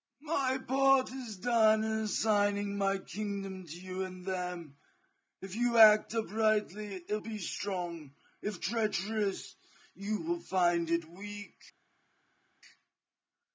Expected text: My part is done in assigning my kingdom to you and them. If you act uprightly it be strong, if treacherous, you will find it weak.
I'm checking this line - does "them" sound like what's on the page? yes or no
yes